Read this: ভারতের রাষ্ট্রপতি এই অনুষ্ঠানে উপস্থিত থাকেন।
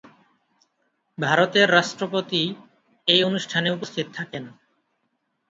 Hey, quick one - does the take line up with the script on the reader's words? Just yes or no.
yes